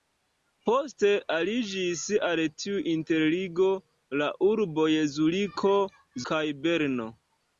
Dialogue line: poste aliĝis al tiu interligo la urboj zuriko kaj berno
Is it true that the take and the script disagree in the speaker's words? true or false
false